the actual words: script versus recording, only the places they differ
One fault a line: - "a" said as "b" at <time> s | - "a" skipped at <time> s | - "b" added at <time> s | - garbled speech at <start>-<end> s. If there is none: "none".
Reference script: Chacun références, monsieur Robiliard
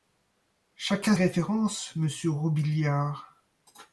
none